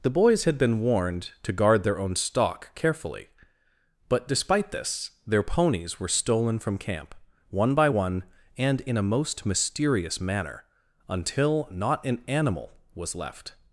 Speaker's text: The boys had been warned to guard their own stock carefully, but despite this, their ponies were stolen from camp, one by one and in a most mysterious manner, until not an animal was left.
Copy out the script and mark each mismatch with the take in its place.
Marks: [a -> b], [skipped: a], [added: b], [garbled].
The boys had been warned to guard their own stock carefully, but despite this, their ponies were stolen from camp, one by one and in a most mysterious manner, until not an animal was left.